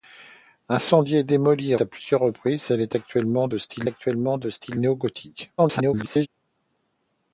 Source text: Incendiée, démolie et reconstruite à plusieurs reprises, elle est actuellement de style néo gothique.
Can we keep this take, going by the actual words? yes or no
no